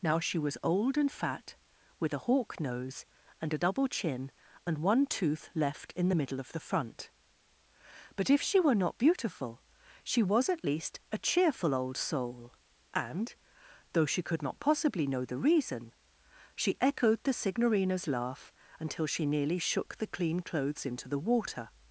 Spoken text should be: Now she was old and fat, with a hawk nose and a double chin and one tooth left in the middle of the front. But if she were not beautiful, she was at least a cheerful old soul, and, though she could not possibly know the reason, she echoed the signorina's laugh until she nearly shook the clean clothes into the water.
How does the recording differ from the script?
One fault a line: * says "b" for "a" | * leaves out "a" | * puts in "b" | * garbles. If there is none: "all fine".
all fine